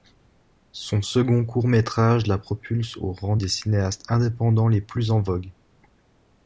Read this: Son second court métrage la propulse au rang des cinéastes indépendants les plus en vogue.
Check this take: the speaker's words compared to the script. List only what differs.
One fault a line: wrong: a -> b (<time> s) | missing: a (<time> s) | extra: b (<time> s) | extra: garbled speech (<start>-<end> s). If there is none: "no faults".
no faults